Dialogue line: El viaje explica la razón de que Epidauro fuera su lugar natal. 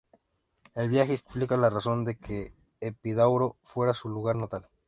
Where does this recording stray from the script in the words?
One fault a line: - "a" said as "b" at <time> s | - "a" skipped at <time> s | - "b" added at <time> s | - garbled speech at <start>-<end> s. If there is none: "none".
none